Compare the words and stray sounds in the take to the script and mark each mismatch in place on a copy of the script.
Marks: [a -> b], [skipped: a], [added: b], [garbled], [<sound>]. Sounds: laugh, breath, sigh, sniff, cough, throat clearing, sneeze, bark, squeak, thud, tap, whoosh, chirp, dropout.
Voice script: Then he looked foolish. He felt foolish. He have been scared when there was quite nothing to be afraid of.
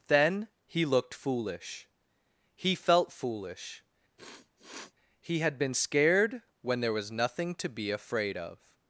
Then he looked foolish. He felt foolish. [sniff] He [have -> had] been scared when there was [skipped: quite] nothing to be afraid of.